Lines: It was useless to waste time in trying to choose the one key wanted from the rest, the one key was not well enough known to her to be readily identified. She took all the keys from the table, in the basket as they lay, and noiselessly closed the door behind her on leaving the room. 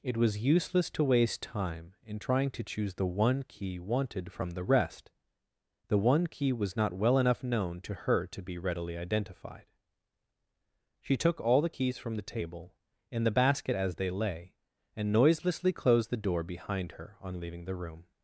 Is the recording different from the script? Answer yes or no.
no